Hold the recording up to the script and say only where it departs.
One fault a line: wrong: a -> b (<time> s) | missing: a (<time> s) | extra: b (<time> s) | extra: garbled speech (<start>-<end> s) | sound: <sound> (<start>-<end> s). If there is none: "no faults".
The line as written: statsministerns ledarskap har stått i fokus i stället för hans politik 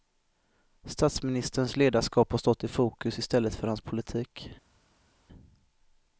no faults